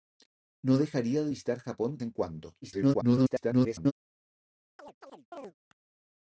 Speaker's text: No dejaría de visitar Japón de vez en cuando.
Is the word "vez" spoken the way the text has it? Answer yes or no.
no